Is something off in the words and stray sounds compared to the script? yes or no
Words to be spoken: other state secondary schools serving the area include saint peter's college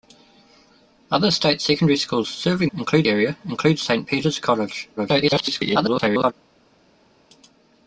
yes